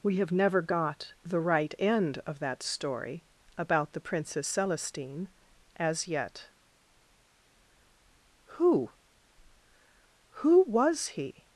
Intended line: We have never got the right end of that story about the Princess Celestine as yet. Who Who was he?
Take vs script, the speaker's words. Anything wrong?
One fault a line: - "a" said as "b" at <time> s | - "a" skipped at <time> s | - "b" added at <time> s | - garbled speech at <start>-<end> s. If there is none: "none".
none